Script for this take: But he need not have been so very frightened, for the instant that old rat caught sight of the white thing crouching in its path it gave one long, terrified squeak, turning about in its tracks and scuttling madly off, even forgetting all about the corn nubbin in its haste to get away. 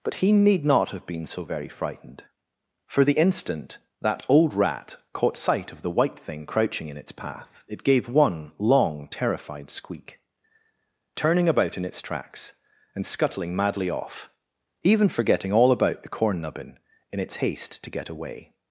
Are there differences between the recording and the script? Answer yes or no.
no